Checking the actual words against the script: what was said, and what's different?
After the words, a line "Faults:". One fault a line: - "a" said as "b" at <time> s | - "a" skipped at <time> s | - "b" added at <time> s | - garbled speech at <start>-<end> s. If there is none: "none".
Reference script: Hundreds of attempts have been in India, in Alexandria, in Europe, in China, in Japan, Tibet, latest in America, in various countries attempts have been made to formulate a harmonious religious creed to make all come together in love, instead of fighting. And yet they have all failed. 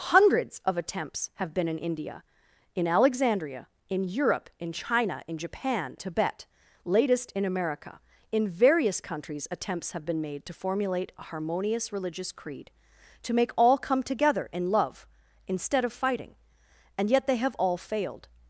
Hundreds of attempts have been in India, in Alexandria, in Europe, in China, in Japan, Tibet, latest in America, in various countries attempts have been made to formulate a harmonious religious creed to make all come together in love, instead of fighting. And yet they have all failed.
Faults:
none